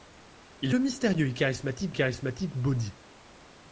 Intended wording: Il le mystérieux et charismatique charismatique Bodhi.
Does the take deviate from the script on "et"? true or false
false